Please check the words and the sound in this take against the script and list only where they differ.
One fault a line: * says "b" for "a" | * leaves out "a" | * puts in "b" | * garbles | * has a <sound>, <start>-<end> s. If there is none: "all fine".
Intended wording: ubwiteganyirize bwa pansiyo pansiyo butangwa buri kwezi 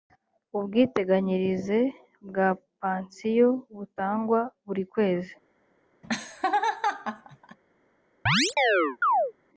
* leaves out "pansiyo"
* has a laugh, 6.0-7.6 s
* has a chirp, 8.3-9.3 s